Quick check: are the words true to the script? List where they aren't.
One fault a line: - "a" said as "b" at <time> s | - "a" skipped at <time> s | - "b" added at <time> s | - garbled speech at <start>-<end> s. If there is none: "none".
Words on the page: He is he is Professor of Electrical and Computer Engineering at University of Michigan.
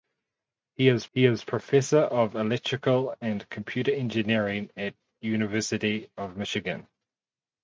none